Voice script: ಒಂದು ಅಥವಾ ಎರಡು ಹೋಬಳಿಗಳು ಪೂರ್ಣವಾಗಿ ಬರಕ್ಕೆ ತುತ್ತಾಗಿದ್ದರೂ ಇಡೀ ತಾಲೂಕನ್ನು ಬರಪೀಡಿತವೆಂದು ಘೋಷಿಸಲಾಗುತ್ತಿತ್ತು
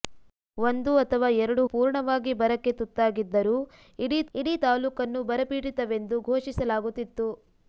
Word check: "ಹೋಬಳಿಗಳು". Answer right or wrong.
wrong